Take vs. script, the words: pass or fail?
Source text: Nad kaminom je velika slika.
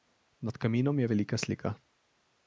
pass